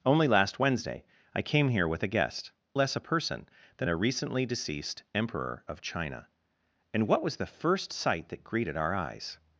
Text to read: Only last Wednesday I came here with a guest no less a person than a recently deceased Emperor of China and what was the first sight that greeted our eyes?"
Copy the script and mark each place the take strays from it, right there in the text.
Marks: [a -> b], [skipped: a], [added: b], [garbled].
Only last Wednesday I came here with a guest [skipped: no] less a person than a recently deceased Emperor of China and what was the first sight that greeted our eyes?"